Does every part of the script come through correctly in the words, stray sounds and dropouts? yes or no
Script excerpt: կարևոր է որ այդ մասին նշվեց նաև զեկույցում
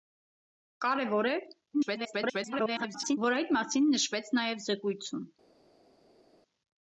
no